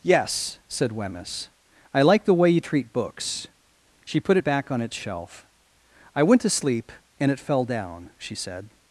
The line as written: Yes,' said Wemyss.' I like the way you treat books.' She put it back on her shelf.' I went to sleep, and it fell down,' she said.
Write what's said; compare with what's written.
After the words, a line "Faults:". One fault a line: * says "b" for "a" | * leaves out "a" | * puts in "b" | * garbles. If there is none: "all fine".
Yes,' said Wemyss.' I like the way you treat books.' She put it back on its shelf.' I went to sleep, and it fell down,' she said.
Faults:
* says "its" for "her"